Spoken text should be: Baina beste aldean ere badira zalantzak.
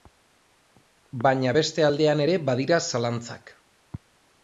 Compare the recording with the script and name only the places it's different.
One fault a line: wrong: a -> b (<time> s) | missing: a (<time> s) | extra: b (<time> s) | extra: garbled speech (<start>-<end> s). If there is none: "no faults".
no faults